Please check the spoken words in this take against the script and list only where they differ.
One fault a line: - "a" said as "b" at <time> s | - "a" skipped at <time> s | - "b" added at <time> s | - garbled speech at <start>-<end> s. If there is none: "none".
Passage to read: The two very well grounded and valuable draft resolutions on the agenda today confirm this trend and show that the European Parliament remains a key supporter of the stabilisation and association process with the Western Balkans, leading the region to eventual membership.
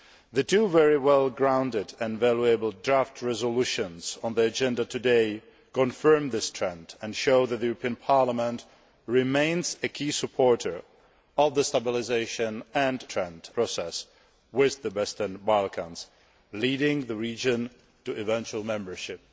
- "association" said as "trend" at 13.0 s